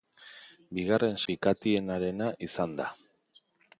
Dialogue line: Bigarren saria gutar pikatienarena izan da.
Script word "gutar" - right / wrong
wrong